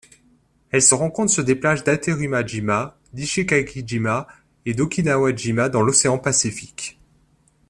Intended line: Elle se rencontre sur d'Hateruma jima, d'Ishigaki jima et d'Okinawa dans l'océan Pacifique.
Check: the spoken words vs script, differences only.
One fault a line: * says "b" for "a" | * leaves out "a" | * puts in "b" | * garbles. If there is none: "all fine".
* puts in "des plages"
* puts in "jima"